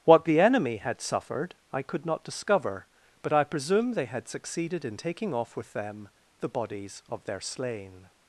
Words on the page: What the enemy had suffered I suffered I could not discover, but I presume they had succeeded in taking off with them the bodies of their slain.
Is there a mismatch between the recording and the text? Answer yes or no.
yes